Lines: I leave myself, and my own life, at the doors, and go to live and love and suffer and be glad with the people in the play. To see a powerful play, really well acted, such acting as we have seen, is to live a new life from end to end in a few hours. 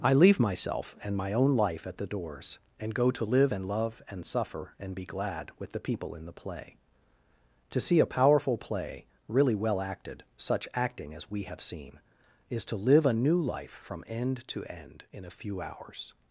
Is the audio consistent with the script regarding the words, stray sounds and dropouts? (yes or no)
yes